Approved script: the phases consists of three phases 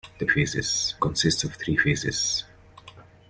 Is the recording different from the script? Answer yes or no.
no